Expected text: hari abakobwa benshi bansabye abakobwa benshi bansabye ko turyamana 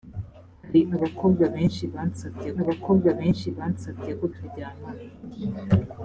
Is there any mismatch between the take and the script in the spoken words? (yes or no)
no